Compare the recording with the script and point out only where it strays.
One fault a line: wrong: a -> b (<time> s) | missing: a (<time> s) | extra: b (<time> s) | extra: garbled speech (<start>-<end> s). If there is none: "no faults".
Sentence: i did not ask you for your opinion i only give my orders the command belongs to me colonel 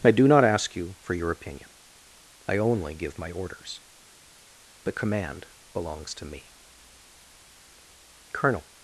wrong: did -> do (0.1 s)